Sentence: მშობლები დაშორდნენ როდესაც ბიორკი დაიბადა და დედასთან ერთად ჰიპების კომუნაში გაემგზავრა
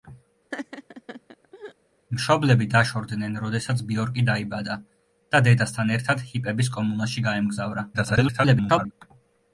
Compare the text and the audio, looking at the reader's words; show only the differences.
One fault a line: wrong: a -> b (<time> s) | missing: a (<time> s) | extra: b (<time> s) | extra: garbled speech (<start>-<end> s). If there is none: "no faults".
extra: garbled speech (7.9-8.9 s)